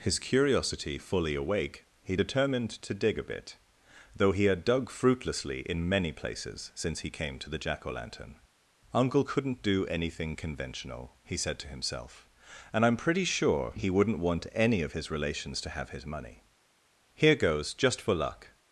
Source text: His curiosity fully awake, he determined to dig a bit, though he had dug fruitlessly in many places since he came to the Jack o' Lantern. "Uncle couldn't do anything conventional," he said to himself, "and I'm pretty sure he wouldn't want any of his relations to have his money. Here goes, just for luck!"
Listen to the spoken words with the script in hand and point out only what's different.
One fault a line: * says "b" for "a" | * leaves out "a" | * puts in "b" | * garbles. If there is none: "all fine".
all fine